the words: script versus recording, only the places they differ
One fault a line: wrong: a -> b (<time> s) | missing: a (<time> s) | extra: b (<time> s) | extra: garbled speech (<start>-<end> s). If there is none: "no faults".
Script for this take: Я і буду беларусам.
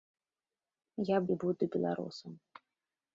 no faults